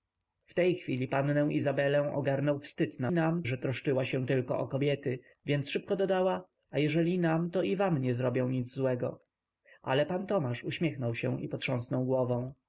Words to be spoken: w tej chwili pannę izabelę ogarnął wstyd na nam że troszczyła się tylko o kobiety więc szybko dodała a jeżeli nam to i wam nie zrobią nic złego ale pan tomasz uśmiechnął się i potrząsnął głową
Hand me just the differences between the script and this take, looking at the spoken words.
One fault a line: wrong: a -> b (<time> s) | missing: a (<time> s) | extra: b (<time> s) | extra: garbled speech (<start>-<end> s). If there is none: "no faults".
no faults